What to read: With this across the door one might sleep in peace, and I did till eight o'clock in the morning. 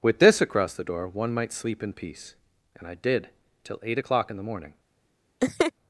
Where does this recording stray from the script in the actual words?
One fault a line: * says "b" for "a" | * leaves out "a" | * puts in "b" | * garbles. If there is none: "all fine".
all fine